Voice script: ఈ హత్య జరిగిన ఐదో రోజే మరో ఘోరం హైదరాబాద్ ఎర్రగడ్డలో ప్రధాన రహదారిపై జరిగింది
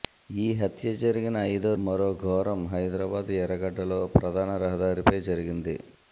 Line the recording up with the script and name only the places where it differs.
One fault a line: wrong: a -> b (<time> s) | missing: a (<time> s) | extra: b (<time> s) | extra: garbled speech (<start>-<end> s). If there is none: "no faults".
missing: రోజే (1.7 s)